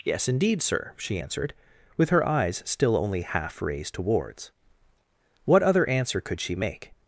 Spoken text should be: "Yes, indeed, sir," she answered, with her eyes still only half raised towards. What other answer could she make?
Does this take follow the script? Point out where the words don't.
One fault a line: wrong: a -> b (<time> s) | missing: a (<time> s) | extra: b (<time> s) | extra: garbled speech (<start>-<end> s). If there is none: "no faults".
no faults